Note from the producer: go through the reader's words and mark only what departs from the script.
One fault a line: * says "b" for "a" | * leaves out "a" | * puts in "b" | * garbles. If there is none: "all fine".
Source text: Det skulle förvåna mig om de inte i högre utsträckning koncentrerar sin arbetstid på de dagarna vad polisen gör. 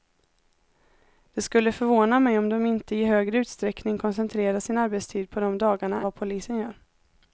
all fine